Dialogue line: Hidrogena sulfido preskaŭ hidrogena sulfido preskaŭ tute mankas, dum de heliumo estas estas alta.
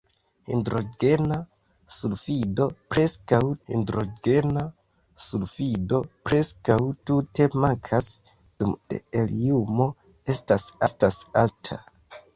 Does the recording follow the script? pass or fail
pass